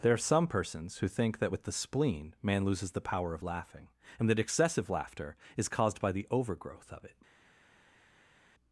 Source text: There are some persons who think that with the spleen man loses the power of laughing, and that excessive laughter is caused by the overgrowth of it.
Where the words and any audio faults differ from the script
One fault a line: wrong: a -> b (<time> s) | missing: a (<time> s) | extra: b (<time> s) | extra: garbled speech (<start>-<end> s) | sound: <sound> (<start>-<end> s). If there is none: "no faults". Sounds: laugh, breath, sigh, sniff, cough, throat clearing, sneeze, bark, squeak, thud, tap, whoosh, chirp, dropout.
no faults